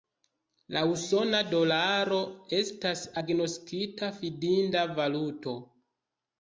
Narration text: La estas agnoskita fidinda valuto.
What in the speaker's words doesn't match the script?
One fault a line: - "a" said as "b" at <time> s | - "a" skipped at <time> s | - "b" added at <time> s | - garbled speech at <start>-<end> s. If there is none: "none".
- "usona dolaro" added at 0.9 s